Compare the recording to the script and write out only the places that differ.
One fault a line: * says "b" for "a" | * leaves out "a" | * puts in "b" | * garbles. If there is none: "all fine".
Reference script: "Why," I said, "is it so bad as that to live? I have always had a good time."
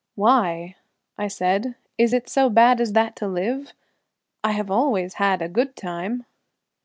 all fine